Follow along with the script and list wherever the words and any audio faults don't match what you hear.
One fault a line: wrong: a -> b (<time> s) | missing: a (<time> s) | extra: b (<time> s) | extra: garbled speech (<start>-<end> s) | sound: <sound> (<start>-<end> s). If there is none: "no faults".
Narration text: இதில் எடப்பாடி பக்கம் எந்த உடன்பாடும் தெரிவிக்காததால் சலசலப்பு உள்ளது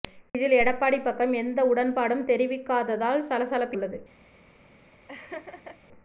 sound: laugh (5.1-5.8 s)